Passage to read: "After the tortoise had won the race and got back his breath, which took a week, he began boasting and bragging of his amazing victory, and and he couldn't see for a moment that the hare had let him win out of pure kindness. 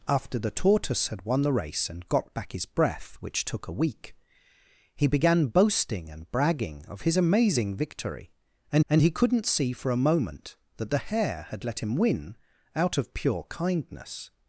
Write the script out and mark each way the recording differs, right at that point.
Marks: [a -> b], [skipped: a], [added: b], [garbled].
"After the tortoise had won the race and got back his breath, which took a week, he began boasting and bragging of his amazing victory, and and he couldn't see for a moment that the hare had let him win out of pure kindness.